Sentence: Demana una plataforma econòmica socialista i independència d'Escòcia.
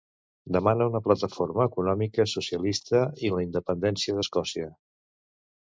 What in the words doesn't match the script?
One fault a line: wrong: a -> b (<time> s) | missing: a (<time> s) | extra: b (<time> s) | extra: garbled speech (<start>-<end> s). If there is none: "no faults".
extra: la (3.4 s)